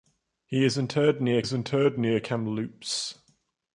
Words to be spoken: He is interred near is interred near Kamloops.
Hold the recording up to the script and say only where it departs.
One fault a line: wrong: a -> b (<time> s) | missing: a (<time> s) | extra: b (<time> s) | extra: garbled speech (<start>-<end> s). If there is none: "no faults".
no faults